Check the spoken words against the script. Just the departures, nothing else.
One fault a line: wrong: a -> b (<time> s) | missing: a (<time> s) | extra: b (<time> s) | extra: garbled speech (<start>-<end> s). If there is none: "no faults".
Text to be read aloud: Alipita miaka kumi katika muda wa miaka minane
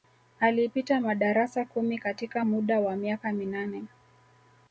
wrong: miaka -> madarasa (1.0 s)